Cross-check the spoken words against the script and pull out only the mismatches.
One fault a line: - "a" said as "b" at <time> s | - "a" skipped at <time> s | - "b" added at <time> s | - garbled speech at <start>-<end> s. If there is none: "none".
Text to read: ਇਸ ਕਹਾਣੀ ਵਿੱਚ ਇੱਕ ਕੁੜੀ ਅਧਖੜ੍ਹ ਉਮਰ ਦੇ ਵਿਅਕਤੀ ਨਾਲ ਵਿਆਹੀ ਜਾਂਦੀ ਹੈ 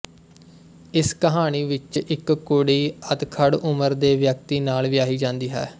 none